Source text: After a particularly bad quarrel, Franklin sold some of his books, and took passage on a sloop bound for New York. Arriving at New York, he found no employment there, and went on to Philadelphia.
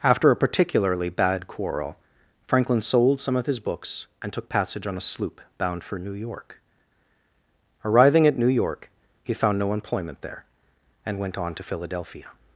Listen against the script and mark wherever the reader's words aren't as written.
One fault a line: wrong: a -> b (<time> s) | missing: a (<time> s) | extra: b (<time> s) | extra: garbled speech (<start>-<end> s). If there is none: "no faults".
no faults